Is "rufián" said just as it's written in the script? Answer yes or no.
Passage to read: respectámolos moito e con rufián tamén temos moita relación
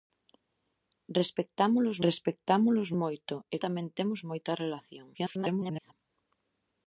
no